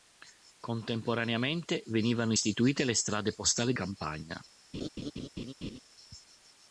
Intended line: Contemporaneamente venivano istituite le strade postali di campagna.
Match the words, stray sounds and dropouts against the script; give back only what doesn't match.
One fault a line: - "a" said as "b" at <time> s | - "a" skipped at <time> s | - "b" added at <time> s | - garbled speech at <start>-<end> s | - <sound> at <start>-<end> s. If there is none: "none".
- "di" skipped at 3.7 s
- laugh at 4.7-5.8 s